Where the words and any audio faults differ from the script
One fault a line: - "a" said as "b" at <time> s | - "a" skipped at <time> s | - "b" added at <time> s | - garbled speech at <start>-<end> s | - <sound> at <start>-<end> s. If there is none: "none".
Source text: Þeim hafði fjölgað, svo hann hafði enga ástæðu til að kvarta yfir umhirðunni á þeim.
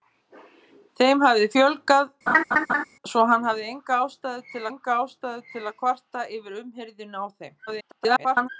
- laugh at 2.3-2.8 s
- "enga ástæðu til" added at 4.7 s
- garbled speech at 7.7-8.5 s